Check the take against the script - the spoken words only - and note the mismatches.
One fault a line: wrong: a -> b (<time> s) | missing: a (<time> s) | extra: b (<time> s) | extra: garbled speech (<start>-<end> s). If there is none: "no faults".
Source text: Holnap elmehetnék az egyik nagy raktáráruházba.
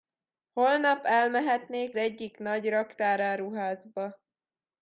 missing: az (2.0 s)